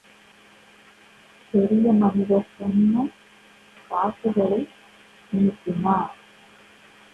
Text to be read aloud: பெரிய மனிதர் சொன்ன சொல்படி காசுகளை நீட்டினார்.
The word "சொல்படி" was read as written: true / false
false